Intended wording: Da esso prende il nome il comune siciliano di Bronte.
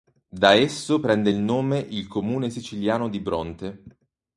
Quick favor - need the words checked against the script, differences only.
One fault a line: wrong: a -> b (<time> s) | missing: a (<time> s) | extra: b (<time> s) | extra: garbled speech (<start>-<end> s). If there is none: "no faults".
no faults